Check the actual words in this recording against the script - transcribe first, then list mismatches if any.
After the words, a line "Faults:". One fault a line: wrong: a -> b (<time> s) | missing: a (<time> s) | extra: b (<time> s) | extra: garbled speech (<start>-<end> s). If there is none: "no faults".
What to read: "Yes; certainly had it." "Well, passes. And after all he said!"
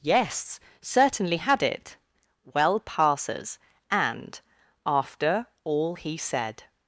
"Yes; certainly had it." "Well, passes. And after all he said!"
Faults:
no faults